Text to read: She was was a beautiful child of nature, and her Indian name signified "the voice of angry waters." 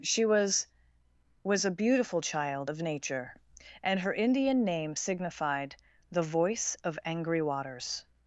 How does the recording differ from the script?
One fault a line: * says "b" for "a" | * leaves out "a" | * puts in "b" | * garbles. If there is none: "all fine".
all fine